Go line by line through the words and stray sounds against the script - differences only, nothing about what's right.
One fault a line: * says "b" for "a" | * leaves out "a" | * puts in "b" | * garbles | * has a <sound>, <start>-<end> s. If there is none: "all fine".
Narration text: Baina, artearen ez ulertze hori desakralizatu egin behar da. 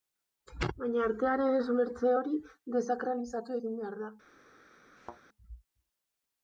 * has a thud, 5.0-5.2 s